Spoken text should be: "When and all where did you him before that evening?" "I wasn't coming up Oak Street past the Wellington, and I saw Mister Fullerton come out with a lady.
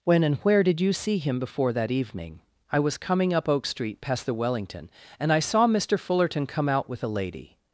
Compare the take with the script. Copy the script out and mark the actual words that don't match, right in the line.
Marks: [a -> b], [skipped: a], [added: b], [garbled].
"When and [skipped: all] where did you [added: see] him before that evening?" "I [wasn't -> was] coming up Oak Street past the Wellington, and I saw Mister Fullerton come out with a lady.